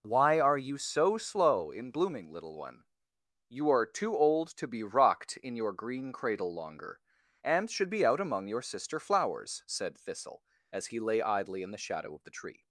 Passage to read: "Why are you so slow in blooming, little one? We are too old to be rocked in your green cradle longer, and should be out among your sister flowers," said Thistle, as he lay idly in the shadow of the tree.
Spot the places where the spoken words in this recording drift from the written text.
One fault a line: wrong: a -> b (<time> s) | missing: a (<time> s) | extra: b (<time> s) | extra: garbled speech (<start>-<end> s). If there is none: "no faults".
wrong: We -> You (3.5 s)